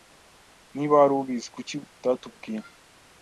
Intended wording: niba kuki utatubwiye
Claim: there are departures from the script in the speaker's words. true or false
true